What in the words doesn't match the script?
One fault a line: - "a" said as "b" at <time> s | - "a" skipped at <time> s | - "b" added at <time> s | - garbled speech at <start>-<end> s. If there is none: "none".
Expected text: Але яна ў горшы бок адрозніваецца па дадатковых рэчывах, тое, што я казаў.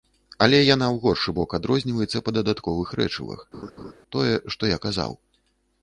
none